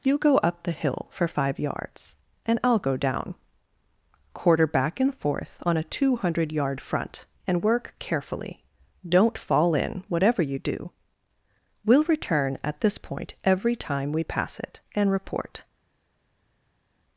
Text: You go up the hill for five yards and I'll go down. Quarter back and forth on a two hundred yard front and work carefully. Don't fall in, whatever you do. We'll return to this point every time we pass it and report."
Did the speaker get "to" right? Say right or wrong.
wrong